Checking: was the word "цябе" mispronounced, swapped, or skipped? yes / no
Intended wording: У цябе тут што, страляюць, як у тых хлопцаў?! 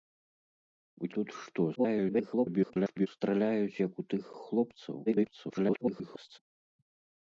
yes